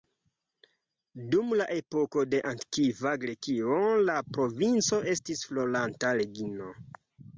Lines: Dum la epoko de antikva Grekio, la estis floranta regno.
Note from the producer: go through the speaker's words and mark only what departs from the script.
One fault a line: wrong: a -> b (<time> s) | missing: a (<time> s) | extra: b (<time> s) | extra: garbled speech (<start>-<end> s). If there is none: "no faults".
extra: provinco (4.4 s)